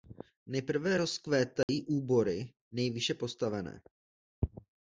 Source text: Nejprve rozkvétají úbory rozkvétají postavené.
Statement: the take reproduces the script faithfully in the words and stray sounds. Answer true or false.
false